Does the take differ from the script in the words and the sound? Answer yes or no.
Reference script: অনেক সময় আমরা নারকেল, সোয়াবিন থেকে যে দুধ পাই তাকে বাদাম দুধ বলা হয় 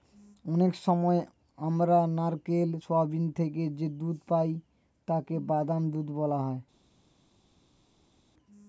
no